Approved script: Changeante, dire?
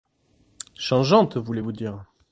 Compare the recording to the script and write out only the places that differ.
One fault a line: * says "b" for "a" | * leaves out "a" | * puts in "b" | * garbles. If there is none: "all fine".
* puts in "voulez vous"